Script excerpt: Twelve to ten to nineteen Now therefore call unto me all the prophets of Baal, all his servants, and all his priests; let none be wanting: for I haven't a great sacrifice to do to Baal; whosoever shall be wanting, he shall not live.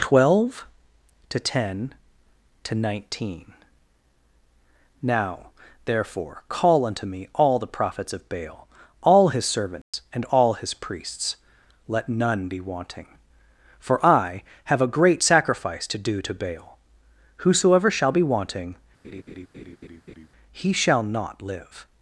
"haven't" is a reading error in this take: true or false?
true